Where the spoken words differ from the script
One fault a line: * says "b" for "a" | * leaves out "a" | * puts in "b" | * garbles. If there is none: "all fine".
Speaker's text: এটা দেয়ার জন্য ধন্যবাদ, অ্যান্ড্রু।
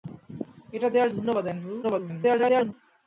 * leaves out "জন্য"
* garbles